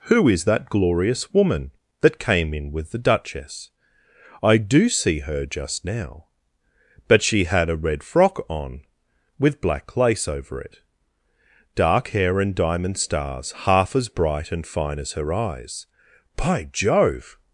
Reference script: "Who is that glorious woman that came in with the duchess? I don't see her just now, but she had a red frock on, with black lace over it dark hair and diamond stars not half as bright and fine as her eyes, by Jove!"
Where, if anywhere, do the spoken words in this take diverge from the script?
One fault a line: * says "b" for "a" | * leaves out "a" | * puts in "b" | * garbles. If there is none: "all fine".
* says "do" for "don't"
* leaves out "not"